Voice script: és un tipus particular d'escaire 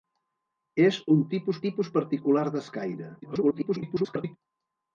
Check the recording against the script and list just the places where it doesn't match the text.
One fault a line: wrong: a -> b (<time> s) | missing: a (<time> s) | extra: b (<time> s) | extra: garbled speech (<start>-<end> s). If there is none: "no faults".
extra: tipus (1.7 s)
extra: garbled speech (3.2-4.4 s)